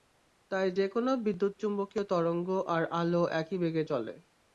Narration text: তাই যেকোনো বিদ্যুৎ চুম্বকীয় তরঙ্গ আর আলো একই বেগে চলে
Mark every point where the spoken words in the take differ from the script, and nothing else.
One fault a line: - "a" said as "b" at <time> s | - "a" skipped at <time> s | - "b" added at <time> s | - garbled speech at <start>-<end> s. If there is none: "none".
none